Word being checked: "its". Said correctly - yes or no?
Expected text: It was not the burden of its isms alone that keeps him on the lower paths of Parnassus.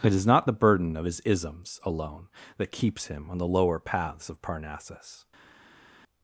no